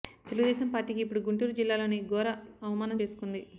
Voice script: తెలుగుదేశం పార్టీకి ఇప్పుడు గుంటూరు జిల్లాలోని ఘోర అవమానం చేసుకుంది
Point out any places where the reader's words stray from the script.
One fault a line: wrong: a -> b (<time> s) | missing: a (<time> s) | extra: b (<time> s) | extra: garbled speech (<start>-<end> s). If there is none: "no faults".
no faults